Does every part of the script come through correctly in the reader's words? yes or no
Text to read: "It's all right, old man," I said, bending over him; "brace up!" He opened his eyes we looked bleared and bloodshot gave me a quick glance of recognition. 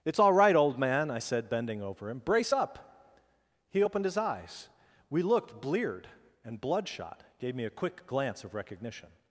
yes